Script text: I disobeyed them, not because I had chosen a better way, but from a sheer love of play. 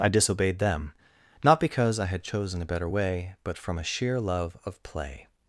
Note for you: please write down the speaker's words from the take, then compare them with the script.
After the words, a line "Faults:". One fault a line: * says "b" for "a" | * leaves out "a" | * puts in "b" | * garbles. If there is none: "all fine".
I disobeyed them, not because I had chosen a better way, but from a sheer love of play.
Faults:
all fine